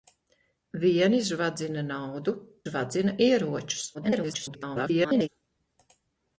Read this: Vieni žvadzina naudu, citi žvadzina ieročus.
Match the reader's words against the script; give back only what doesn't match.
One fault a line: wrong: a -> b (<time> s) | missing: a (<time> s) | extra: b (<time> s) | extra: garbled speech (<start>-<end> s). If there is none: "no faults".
missing: citi (2.3 s)
extra: garbled speech (3.9-5.3 s)